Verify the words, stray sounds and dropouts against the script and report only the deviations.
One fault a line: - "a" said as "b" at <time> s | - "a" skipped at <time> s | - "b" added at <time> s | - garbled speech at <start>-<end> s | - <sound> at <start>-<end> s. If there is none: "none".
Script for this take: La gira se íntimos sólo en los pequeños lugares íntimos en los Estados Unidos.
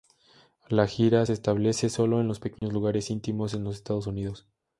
- "íntimos" said as "establece" at 1.3 s
- dropout at 2.6-2.6 s